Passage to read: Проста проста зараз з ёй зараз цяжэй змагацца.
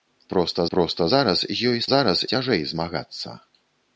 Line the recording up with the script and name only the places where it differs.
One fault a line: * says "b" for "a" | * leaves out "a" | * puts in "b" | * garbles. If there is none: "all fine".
all fine